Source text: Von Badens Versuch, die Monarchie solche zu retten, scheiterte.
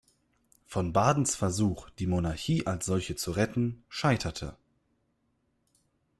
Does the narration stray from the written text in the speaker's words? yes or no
yes